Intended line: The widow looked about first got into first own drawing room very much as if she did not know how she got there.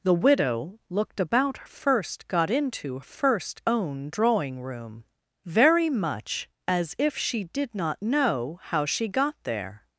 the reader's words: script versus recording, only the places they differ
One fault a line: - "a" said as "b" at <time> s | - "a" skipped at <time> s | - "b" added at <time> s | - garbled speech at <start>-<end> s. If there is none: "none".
none